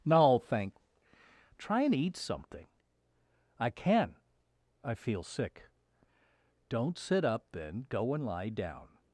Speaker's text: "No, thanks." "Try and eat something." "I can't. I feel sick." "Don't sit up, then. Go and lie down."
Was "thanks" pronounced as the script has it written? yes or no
no